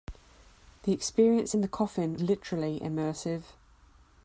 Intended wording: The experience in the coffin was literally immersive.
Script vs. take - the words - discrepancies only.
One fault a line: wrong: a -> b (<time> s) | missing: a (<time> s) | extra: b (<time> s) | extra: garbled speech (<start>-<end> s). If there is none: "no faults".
missing: was (2.2 s)